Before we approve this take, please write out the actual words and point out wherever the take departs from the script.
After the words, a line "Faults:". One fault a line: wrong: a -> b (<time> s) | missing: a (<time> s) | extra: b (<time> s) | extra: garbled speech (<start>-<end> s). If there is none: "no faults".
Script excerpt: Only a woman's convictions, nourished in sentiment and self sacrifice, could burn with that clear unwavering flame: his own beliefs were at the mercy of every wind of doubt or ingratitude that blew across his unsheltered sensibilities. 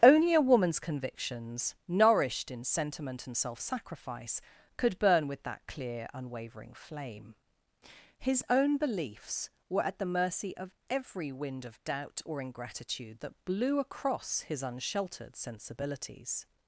Only a woman's convictions, nourished in sentiment and self sacrifice, could burn with that clear unwavering flame: his own beliefs were at the mercy of every wind of doubt or ingratitude that blew across his unsheltered sensibilities.
Faults:
no faults